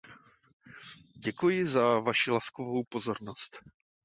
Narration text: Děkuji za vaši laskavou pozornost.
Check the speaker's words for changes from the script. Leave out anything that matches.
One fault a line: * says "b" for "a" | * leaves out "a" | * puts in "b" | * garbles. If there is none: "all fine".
all fine